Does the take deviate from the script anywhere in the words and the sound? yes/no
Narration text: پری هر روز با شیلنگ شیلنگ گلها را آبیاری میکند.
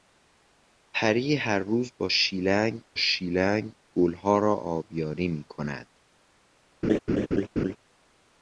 yes